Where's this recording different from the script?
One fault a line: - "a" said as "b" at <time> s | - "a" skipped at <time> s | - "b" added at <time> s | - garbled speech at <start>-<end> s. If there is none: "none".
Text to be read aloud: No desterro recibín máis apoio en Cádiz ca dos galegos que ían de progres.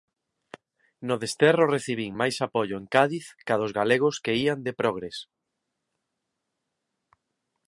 none